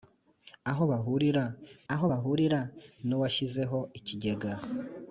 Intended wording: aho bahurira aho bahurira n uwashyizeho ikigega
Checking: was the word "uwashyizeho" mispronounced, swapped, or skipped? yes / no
no